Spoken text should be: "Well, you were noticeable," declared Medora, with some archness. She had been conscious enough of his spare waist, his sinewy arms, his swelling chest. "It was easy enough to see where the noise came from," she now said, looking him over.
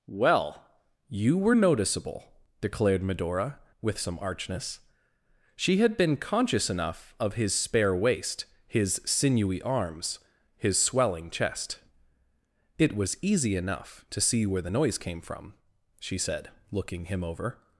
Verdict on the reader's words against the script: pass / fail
fail